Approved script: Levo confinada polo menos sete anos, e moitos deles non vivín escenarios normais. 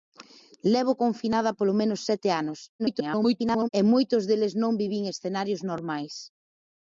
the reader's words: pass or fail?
fail